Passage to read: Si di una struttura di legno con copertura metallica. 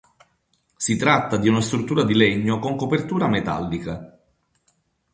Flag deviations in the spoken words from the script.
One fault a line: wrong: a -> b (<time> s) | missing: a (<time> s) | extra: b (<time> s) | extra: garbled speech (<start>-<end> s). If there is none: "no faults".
extra: tratta (1.0 s)